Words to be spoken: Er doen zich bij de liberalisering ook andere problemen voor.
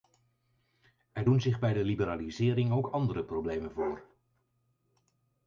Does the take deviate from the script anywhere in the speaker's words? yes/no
no